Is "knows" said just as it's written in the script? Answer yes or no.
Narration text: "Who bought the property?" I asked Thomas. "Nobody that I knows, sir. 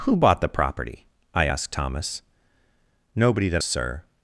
no